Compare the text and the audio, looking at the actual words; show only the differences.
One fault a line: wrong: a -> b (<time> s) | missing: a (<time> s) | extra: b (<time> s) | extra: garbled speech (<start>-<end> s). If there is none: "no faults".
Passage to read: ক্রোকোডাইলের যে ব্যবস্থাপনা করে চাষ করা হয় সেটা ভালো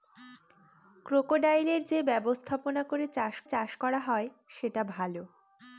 extra: চাষ (3.4 s)